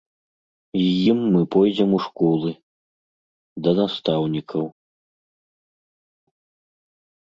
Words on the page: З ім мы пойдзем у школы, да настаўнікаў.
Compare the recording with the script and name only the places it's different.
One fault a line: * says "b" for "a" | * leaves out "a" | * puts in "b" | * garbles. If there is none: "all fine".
all fine